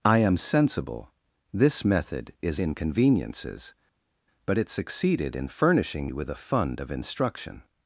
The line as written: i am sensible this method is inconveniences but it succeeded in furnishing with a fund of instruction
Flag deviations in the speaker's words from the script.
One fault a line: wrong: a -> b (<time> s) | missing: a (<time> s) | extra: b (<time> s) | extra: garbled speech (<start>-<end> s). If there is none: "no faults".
no faults